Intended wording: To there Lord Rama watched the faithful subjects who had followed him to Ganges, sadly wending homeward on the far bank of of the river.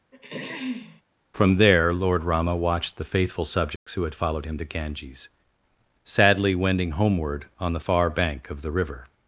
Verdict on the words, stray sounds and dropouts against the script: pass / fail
fail